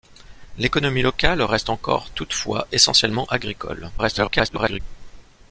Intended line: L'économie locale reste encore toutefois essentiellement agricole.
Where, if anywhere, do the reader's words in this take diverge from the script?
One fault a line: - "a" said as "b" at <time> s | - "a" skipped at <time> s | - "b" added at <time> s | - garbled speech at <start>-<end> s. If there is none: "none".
- garbled speech at 4.0-4.8 s